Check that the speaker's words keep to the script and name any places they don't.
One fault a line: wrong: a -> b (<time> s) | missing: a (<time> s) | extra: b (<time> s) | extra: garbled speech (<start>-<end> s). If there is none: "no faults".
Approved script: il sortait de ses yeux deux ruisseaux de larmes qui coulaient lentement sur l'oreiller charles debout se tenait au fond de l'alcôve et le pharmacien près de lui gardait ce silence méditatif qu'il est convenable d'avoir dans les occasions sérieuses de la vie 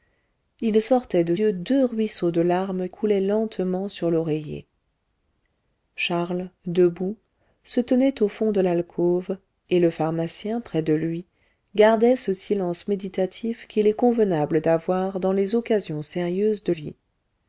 missing: ses (1.4 s)
missing: qui (2.9 s)
missing: la (16.7 s)